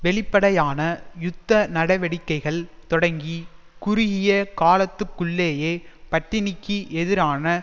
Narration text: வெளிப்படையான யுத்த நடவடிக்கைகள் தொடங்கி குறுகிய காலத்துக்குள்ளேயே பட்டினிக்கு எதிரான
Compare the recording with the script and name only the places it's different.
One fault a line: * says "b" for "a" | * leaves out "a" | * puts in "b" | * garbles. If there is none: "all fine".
all fine